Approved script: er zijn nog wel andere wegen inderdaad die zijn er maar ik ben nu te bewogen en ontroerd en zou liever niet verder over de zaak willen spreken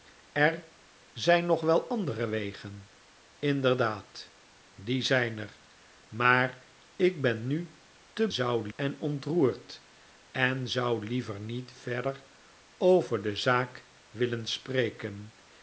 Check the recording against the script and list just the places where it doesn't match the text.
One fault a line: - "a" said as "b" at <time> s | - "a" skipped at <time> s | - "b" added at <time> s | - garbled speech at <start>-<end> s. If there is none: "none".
- "bewogen" said as "zou" at 8.3 s